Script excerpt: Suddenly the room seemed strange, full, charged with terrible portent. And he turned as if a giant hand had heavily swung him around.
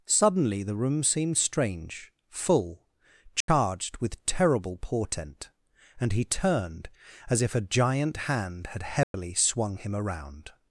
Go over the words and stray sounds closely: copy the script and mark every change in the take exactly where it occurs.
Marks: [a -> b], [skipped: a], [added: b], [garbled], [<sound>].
Suddenly the room seemed strange, full, charged [dropout] with terrible portent. And he turned as if a giant hand had heavily [dropout] swung him around.